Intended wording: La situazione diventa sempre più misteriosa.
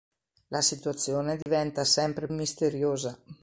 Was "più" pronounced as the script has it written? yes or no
no